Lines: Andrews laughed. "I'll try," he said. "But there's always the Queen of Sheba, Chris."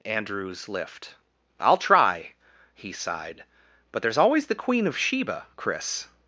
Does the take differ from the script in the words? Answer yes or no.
yes